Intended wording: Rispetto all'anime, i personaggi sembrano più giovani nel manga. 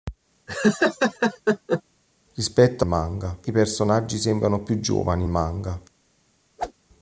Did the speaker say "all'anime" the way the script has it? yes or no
no